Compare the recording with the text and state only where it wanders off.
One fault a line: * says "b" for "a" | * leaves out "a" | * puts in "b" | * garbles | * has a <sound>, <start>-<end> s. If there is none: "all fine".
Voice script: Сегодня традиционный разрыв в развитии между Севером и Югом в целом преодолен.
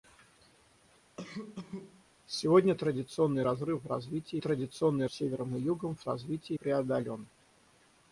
* has a cough, 1.2-2.0 s
* says "традиционный" for "между"
* says "развитии" for "целом"